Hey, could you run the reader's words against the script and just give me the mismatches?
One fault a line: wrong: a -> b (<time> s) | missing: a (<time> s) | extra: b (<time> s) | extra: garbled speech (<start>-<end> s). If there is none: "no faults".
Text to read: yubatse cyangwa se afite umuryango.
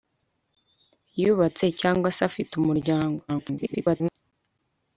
extra: garbled speech (3.3-4.1 s)